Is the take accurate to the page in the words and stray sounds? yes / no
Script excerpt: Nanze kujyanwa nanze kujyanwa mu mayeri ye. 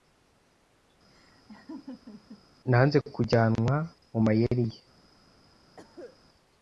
no